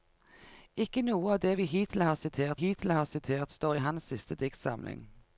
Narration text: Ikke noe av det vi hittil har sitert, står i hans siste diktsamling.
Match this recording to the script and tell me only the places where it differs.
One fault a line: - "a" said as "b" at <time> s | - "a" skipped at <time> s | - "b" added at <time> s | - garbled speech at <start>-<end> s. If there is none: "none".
- "hittil har sitert" added at 2.6 s